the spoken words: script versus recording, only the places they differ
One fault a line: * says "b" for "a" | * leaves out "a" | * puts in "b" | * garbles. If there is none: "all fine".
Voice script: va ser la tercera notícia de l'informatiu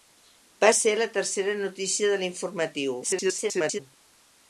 * garbles